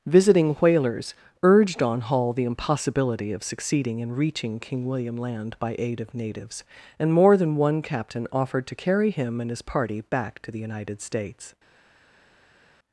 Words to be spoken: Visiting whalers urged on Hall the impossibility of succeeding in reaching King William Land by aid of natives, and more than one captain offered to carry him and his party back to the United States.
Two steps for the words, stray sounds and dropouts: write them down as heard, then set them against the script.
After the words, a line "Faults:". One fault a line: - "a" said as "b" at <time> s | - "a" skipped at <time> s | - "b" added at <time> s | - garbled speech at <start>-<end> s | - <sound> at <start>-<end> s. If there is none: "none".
Visiting whalers urged on Hall the impossibility of succeeding in reaching King William Land by aid of natives, and more than one captain offered to carry him and his party back to the United States.
Faults:
none